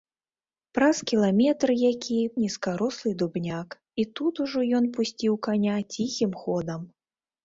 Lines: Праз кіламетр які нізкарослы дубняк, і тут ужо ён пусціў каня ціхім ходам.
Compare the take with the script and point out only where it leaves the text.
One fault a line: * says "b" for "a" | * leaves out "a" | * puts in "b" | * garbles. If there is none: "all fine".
all fine